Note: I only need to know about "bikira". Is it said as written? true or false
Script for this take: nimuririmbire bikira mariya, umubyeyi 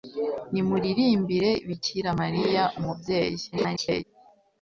true